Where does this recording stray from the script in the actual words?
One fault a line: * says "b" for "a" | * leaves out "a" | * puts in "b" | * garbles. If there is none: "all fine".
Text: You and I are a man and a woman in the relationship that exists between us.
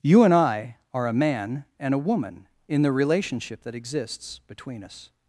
all fine